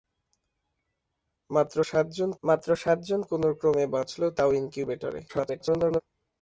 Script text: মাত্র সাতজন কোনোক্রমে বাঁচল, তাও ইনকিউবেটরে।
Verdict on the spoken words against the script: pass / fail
fail